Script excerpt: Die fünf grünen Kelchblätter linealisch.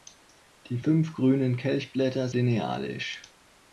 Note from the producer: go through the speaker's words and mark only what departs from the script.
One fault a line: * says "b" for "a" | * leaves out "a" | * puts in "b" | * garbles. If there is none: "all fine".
all fine